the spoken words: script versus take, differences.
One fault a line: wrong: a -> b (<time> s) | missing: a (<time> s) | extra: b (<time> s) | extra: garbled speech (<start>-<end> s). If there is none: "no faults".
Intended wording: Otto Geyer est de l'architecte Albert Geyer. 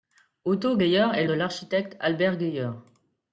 no faults